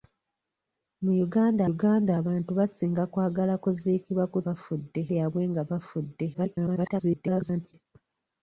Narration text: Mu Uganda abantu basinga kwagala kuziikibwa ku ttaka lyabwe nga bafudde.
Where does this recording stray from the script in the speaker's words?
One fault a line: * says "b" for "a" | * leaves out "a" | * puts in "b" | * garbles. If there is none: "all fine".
* puts in "Uganda"
* says "bafudde" for "ttaka"
* garbles